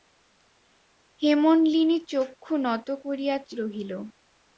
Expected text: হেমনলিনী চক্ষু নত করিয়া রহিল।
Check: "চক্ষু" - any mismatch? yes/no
no